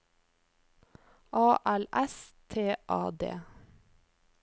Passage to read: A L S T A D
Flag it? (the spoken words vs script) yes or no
no